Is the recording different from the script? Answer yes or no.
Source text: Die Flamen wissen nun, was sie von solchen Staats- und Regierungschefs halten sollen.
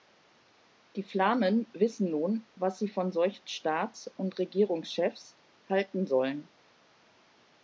no